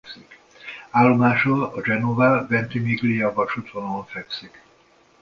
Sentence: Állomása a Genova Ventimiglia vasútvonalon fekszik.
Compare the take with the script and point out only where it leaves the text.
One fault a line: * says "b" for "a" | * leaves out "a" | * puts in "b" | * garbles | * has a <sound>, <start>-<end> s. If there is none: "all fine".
all fine